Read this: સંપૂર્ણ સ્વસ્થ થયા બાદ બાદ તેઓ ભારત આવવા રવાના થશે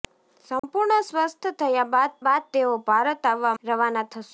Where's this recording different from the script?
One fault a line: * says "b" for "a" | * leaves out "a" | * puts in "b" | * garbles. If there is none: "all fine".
all fine